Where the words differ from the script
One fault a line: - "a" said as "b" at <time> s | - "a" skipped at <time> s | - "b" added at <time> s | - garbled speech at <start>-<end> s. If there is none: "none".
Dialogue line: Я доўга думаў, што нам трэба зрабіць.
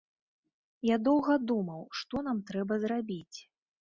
none